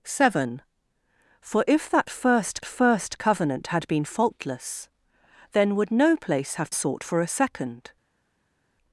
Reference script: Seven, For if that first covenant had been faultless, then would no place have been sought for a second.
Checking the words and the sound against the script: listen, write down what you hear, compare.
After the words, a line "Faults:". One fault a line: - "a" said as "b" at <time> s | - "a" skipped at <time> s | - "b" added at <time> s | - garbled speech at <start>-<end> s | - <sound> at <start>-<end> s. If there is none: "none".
Seven, For if that first first covenant had been faultless, then would no place have sought for a second.
Faults:
- "first" added at 2.6 s
- "been" skipped at 6.7 s